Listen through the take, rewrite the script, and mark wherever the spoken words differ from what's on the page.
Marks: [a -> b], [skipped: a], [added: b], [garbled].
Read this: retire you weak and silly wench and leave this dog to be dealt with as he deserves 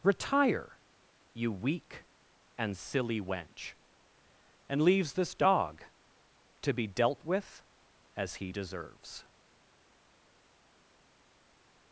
retire you weak and silly wench and [leave -> leaves] this dog to be dealt with as he deserves